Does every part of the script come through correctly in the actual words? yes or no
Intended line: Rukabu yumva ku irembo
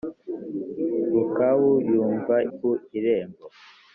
yes